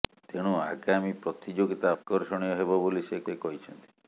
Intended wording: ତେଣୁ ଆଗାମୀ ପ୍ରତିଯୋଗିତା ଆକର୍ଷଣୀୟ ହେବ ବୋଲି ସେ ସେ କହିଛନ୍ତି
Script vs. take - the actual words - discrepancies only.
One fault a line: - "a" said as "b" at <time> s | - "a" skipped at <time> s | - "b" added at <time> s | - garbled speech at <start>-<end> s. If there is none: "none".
none